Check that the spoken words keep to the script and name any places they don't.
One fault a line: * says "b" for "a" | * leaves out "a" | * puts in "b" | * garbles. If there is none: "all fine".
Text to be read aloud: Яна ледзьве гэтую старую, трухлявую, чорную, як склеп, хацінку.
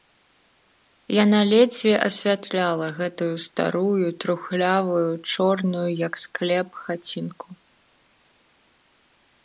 * puts in "асвятляла"